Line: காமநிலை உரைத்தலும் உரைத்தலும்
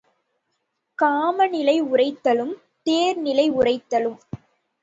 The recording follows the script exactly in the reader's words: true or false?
false